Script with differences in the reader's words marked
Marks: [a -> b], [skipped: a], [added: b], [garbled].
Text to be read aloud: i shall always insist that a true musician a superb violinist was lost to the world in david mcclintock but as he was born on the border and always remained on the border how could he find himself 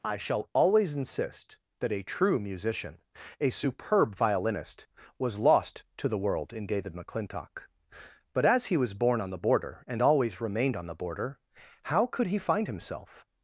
i shall always insist that a true musician a superb violinist was lost to the world in david mcclintock but as he was born on the border and always remained on the border how could he find himself